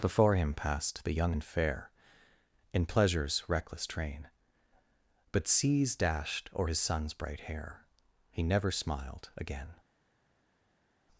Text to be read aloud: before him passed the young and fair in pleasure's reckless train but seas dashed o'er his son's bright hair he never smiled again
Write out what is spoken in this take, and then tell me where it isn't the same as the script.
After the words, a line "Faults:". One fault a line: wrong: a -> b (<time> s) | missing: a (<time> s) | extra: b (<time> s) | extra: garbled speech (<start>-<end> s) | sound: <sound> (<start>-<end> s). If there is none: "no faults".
before him passed the young and fair in pleasure's reckless train but seas dashed o'er his son's bright hair he never smiled again
Faults:
no faults